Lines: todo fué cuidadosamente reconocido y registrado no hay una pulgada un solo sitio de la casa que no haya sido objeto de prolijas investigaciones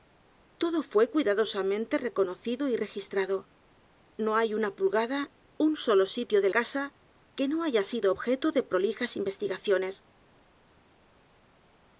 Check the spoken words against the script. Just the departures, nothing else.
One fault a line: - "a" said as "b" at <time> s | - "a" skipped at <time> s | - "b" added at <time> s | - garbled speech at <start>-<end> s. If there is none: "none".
- "la" skipped at 6.5 s